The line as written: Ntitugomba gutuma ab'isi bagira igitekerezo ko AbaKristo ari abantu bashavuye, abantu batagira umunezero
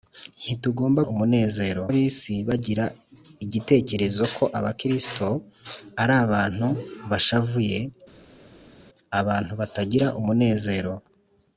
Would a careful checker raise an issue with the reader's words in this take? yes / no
yes